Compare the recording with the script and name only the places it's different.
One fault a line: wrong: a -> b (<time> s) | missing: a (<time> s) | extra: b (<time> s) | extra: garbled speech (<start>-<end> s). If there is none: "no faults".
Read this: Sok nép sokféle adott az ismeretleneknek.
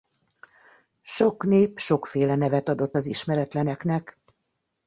extra: nevet (2.4 s)